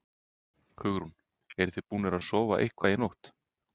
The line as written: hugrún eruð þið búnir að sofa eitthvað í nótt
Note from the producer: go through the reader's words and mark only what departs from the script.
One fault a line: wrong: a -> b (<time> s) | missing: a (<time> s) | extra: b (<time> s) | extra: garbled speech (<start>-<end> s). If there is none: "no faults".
no faults